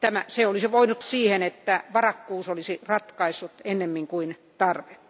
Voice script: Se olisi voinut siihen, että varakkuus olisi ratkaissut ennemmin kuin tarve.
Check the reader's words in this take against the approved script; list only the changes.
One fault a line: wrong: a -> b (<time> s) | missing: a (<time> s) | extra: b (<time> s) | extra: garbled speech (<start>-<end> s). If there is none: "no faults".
no faults